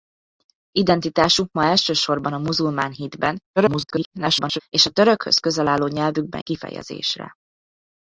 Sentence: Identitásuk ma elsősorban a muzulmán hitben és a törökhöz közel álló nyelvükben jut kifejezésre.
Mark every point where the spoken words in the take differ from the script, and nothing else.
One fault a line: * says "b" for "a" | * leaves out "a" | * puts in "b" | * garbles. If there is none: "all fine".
* garbles
* leaves out "jut"